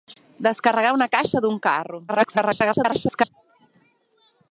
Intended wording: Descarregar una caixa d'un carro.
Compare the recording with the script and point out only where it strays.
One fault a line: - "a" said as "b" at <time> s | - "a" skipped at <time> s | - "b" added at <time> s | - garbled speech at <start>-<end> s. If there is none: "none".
- garbled speech at 2.1-3.3 s